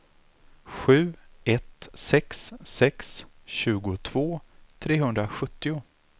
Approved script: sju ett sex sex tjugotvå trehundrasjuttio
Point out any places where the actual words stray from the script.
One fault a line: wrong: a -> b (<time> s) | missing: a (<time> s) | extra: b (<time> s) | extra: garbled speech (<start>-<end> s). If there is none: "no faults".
no faults